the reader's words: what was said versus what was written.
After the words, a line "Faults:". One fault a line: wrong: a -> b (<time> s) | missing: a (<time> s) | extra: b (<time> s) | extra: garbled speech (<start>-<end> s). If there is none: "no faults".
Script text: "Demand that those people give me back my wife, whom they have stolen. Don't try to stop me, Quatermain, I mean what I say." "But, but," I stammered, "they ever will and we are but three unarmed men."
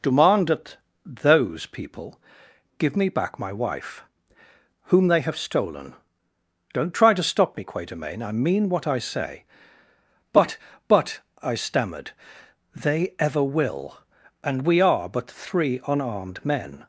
"Demand that those people give me back my wife, whom they have stolen. Don't try to stop me, Quatermain, I mean what I say." "But, but," I stammered, "they ever will and we are but three unarmed men."
Faults:
no faults